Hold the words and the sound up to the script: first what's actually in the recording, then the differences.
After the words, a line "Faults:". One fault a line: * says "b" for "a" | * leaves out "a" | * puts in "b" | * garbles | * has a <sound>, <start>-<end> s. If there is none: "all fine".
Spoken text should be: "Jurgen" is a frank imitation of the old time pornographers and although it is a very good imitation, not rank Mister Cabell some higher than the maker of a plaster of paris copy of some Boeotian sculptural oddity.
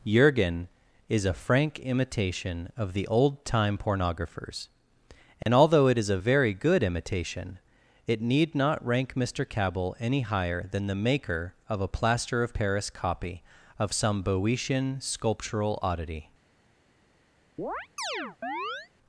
"Jurgen" is a frank imitation of the old time pornographers and although it is a very good imitation, it need not rank Mister Cabell any higher than the maker of a plaster of paris copy of some Boeotian sculptural oddity.
Faults:
* has a dropout, 5.4-5.5 s
* puts in "it need"
* says "any" for "some"
* has a chirp, 17.6-18.9 s